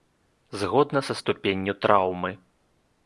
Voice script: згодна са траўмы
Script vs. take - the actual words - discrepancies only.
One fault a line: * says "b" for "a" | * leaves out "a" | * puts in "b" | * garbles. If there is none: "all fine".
* puts in "ступенню"